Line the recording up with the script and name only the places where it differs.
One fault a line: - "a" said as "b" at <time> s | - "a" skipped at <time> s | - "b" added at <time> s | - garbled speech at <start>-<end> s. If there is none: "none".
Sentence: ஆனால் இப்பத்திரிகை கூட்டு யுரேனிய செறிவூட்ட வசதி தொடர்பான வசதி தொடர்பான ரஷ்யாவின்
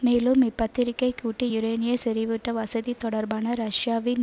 - "ஆனால்" said as "மேலும்" at 0.0 s
- "வசதி தொடர்பான" skipped at 3.5 s